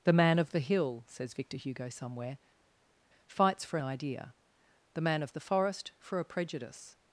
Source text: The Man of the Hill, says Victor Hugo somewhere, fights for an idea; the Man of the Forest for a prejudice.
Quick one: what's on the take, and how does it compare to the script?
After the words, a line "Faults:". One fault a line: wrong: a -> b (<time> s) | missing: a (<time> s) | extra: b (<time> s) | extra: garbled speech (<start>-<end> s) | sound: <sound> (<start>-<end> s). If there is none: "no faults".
The Man of the Hill, says Victor Hugo somewhere, fights for idea; the Man of the Forest for a prejudice.
Faults:
missing: an (3.8 s)